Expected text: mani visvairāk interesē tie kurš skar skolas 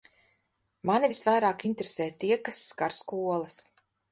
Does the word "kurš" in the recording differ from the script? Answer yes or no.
yes